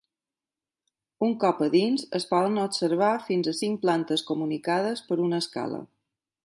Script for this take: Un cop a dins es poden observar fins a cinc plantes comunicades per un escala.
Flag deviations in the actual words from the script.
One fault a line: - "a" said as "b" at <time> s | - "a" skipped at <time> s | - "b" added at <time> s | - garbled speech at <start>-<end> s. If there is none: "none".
- "un" said as "una" at 5.3 s